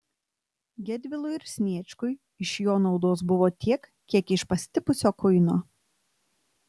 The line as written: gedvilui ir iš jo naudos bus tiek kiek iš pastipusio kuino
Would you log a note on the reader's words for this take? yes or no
yes